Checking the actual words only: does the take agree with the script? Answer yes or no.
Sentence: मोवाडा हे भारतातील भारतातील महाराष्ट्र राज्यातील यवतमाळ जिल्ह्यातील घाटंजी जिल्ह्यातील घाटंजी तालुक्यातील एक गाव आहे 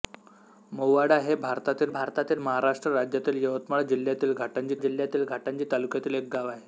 yes